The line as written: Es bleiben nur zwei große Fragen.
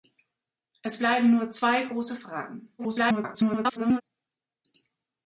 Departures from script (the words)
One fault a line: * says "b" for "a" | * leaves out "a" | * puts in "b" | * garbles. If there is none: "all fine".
* garbles